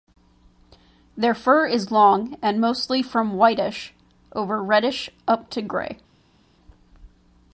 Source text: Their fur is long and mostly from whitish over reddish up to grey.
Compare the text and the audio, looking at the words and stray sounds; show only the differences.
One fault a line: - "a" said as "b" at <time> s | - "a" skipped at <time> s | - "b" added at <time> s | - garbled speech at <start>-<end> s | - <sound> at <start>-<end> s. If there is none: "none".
none